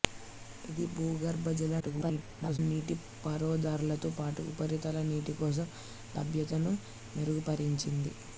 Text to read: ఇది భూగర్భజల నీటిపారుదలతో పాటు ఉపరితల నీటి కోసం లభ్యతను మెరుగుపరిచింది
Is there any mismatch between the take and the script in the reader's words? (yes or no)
yes